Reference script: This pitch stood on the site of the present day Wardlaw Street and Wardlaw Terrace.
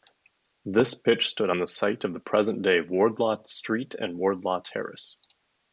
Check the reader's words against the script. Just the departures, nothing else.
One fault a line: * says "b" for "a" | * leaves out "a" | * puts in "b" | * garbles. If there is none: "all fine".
all fine